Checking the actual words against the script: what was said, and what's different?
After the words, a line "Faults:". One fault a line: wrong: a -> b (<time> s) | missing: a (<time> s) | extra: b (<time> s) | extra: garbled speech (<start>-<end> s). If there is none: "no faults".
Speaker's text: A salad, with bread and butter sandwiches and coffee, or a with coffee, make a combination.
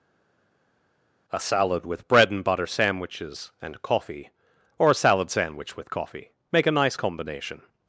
A salad, with bread and butter sandwiches and coffee, or a salad sandwich with coffee, make a nice combination.
Faults:
extra: salad sandwich (4.9 s)
extra: nice (6.7 s)